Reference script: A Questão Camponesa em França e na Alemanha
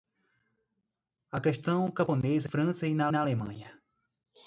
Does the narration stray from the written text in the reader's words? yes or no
yes